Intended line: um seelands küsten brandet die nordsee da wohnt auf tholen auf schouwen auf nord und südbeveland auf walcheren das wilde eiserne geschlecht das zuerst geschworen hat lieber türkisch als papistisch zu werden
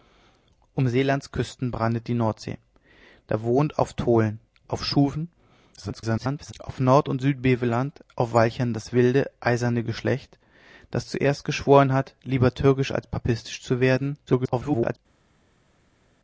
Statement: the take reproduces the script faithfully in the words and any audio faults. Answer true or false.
false